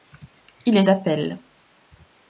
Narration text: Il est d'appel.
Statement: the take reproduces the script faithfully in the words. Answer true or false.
true